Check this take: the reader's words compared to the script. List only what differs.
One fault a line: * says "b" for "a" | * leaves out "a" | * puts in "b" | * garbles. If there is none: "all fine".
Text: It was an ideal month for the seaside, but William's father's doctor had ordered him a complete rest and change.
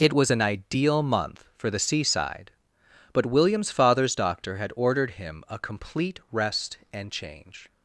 all fine